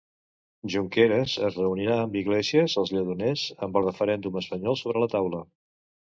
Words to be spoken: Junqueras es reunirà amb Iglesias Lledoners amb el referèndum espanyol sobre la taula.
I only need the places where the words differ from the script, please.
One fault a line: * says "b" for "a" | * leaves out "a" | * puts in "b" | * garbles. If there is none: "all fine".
* puts in "als"